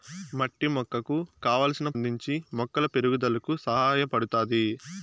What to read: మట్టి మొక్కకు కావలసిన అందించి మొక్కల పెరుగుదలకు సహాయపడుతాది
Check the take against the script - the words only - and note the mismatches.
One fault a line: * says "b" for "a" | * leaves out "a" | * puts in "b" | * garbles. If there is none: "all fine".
all fine